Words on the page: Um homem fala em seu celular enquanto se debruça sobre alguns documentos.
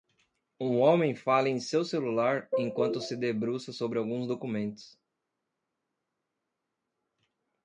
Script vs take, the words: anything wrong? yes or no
no